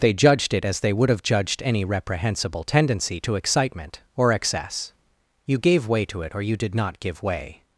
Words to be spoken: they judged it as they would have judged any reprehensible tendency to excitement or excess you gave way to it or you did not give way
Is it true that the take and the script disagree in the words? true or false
false